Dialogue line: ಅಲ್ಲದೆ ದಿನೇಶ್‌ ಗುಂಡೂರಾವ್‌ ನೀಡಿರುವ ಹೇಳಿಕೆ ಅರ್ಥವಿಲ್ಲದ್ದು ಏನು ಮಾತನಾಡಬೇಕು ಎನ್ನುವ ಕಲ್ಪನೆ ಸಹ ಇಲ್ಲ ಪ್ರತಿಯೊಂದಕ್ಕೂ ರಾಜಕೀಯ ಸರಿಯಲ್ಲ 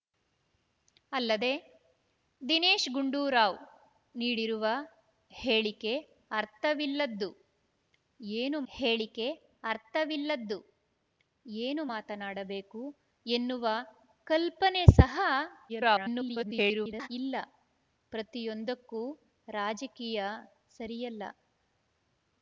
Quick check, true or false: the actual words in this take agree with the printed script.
false